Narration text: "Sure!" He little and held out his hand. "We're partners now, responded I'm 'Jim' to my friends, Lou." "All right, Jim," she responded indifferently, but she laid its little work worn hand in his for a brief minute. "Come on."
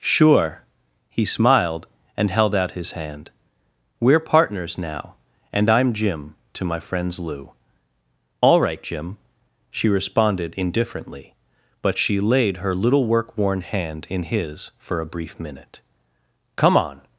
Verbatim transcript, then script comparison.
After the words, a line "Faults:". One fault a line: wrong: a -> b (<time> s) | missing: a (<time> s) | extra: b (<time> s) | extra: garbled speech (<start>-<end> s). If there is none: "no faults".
"Sure!" He smiled and held out his hand. "We're partners now, and I'm 'Jim' to my friends, Lou." "All right, Jim," she responded indifferently, but she laid her little work worn hand in his for a brief minute. "Come on."
Faults:
wrong: little -> smiled (1.2 s)
wrong: responded -> and (5.5 s)
wrong: its -> her (12.6 s)